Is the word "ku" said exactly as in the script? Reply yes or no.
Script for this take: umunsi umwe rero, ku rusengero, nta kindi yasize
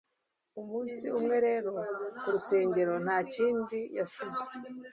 yes